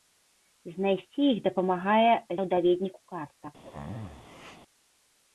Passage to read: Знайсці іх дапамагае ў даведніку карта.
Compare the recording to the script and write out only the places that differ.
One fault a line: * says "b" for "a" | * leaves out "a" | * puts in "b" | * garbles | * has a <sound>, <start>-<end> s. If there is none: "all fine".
* has a sneeze, 3.6-4.6 s